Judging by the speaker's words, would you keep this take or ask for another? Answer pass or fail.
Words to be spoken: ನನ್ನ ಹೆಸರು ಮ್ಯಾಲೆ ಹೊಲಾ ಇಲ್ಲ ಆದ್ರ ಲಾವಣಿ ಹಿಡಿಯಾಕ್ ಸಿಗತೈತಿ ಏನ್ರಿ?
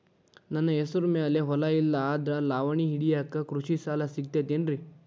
fail